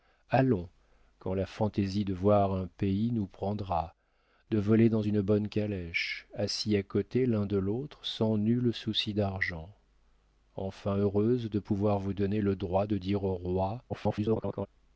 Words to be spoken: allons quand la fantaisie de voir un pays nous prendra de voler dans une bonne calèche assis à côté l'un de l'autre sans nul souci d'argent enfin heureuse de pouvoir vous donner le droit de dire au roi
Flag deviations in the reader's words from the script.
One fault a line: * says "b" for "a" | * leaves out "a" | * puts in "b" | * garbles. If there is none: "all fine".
* garbles